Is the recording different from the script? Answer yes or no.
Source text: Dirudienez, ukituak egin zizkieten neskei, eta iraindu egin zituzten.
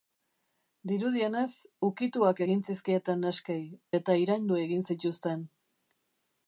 no